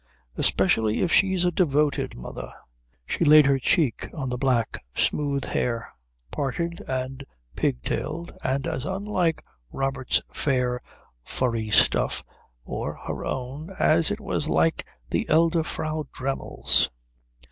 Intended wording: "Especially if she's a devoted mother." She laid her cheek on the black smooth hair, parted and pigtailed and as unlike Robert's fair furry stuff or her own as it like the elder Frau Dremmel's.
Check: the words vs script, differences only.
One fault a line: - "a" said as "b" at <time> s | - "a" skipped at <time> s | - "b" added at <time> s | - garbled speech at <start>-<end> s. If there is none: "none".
- "was" added at 14.2 s